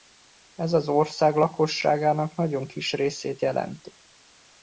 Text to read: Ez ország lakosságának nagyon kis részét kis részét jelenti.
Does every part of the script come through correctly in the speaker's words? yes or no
no